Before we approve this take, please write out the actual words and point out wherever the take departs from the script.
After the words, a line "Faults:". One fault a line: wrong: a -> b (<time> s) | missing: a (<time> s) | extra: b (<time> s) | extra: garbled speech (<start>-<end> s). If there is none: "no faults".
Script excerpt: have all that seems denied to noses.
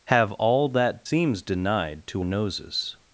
have all that seems denied to noses.
Faults:
no faults